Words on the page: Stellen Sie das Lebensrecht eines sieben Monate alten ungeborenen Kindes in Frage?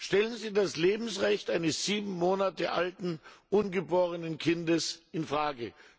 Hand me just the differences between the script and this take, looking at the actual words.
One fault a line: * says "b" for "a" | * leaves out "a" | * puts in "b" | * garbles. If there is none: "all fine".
all fine